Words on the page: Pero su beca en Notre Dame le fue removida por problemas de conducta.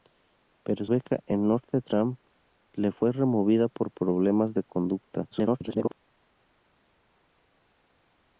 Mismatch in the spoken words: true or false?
true